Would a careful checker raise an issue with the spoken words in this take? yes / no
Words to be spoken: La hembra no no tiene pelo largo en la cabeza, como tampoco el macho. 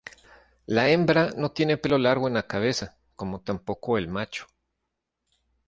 yes